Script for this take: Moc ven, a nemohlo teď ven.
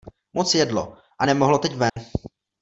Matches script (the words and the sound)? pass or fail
fail